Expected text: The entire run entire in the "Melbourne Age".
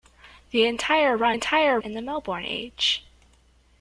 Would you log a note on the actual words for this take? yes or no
no